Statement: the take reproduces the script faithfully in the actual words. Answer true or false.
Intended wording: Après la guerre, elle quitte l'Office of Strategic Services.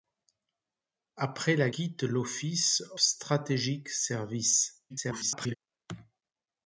false